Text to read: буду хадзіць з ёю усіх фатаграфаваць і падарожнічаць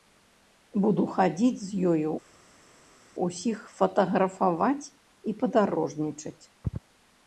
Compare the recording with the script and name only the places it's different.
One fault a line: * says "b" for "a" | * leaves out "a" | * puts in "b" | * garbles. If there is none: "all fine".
all fine